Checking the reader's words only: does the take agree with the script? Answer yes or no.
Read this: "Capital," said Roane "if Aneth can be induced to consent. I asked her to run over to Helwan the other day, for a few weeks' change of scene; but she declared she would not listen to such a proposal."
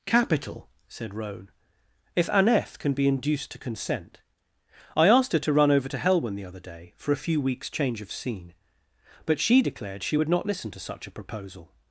yes